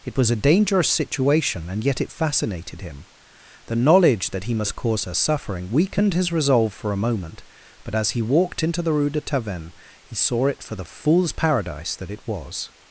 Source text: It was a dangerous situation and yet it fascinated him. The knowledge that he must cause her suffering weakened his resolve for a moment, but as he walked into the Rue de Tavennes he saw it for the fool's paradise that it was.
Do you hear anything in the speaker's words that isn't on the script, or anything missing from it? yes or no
no